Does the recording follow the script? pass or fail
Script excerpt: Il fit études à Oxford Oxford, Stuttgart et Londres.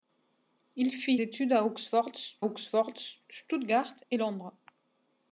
pass